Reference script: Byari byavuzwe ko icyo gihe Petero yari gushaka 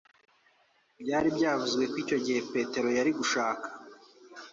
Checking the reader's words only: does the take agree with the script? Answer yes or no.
yes